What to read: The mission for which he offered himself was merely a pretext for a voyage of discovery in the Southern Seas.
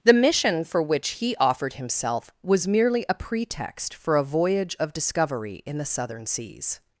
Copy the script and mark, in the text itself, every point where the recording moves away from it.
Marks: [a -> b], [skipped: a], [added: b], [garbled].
The mission for which he offered himself was merely a pretext for a voyage of discovery in the Southern Seas.